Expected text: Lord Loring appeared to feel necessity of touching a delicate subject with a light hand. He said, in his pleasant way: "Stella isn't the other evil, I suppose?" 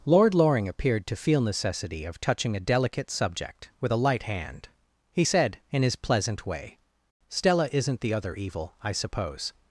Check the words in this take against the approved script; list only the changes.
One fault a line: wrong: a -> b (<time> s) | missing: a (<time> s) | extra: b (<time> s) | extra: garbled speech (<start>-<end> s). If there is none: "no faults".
no faults